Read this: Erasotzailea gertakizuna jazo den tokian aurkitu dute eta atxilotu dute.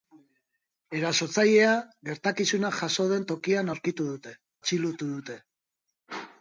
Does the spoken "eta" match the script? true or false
false